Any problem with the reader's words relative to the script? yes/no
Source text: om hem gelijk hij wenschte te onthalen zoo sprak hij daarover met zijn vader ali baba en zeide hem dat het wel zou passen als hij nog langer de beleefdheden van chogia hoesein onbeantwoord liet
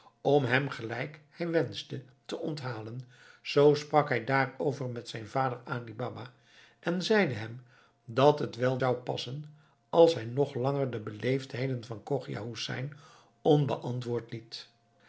no